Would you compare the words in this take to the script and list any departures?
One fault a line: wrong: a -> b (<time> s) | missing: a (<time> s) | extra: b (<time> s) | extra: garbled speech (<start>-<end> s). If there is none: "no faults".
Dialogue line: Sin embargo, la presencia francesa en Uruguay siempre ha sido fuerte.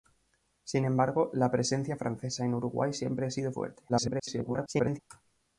extra: garbled speech (3.9-5.0 s)